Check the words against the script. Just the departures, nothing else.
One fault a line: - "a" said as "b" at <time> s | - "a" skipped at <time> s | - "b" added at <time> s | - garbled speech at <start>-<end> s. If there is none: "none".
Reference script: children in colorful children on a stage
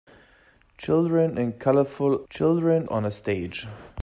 none